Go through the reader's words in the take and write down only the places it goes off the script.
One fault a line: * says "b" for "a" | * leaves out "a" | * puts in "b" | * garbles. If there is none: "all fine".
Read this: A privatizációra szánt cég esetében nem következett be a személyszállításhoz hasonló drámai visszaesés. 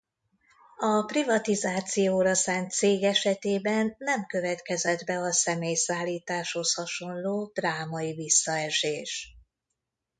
all fine